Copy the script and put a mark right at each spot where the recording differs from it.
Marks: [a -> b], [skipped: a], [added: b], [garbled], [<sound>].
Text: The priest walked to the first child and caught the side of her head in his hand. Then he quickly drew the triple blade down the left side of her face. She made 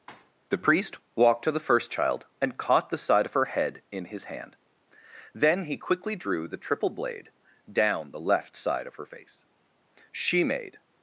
[thud] The priest walked to the first child and caught the side of her head in his hand. Then he quickly drew the triple blade down the left side of her face. She made